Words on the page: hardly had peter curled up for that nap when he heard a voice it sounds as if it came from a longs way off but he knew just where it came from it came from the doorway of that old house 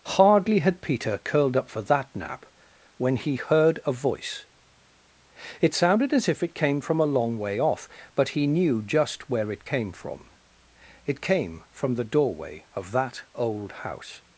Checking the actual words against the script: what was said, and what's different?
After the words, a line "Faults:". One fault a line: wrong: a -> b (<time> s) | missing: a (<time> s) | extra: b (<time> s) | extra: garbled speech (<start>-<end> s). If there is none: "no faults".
hardly had peter curled up for that nap when he heard a voice it sounded as if it came from a long way off but he knew just where it came from it came from the doorway of that old house
Faults:
wrong: sounds -> sounded (5.8 s)
wrong: longs -> long (7.0 s)